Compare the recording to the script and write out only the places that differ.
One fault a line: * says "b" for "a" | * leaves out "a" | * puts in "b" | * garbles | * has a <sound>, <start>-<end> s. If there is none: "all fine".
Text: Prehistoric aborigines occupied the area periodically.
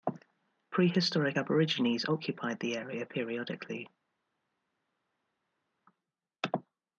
all fine